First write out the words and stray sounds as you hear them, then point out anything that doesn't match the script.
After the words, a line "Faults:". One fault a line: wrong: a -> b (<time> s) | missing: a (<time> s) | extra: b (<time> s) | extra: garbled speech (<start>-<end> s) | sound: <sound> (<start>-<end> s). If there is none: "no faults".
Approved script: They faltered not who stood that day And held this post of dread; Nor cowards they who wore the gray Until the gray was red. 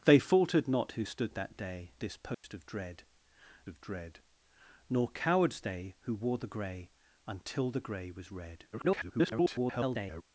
They faltered not who stood that day This post of dread of dread; Nor cowards they who wore the gray Until the gray was red. [garbled]
Faults:
wrong: And held this post -> This post of dread (2.0 s)
sound: dropout (2.3-2.4 s)
extra: garbled speech (8.7-10.2 s)